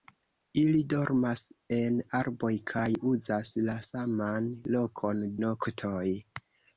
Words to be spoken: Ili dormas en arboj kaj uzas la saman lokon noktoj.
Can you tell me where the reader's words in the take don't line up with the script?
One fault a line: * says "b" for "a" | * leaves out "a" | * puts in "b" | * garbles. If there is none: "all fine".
all fine